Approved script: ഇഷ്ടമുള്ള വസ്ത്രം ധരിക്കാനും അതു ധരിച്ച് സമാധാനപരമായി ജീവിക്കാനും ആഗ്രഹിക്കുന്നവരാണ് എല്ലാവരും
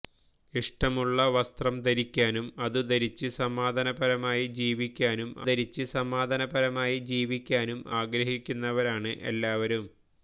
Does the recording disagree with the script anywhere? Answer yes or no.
yes